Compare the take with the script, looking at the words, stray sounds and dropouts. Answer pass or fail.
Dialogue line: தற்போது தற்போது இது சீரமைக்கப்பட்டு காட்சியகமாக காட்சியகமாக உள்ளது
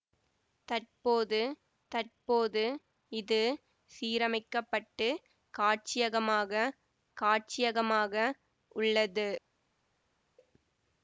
pass